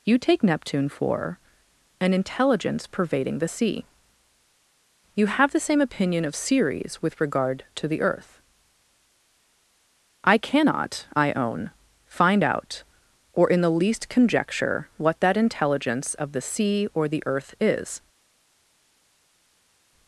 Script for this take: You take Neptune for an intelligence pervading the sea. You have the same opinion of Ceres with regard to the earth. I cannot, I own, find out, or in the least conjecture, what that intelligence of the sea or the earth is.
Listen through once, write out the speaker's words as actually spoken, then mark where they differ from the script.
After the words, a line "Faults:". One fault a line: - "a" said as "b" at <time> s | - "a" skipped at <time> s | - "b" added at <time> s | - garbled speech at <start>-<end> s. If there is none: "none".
You take Neptune for an intelligence pervading the sea. You have the same opinion of Ceres with regard to the earth. I cannot, I own, find out, or in the least conjecture, what that intelligence of the sea or the earth is.
Faults:
none